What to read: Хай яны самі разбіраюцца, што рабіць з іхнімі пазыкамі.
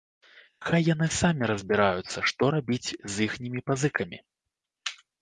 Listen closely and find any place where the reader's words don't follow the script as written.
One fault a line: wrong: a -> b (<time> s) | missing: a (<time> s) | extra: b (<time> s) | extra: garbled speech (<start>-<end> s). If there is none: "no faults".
no faults